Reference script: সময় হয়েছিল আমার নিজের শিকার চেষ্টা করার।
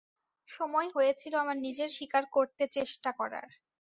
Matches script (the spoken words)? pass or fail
fail